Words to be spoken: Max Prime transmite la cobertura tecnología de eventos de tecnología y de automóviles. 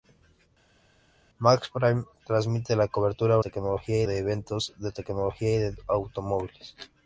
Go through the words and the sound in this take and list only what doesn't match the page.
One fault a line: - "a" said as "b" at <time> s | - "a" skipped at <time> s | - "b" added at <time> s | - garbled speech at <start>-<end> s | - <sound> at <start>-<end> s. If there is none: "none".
none